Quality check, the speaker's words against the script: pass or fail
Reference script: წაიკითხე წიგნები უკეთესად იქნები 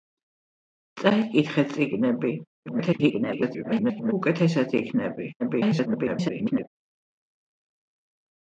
fail